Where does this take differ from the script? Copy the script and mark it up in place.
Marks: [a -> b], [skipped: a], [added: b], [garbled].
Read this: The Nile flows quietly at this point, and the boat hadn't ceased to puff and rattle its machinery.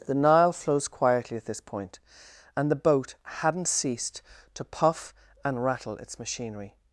The Nile flows quietly at this point, and the boat hadn't ceased to puff and rattle its machinery.